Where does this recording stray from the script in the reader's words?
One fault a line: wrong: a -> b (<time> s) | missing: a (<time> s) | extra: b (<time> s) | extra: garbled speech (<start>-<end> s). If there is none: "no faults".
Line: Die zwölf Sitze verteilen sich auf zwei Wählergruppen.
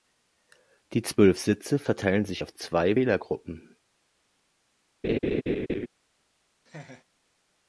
no faults